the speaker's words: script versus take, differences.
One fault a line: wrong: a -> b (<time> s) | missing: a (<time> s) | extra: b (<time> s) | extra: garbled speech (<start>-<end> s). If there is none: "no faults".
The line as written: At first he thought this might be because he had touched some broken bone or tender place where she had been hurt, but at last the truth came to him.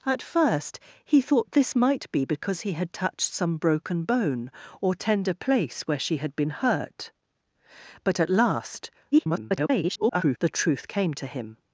extra: garbled speech (9.1-10.4 s)